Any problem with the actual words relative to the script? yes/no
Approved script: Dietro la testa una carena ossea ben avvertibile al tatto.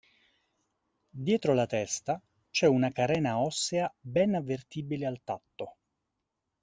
yes